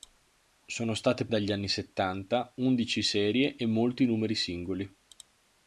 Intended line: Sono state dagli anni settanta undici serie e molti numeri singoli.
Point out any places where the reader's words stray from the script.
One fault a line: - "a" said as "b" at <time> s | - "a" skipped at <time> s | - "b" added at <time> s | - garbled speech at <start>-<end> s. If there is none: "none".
none